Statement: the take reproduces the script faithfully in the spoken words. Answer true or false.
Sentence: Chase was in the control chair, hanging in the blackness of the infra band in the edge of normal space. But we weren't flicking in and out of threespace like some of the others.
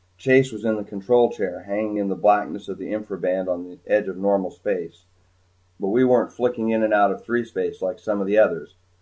false